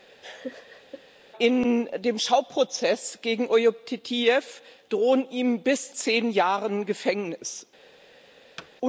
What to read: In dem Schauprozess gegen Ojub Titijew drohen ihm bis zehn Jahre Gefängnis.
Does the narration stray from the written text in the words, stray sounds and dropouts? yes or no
yes